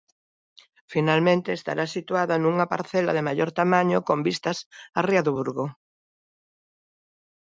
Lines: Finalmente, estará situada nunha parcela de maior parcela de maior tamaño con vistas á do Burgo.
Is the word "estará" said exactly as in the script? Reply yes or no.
yes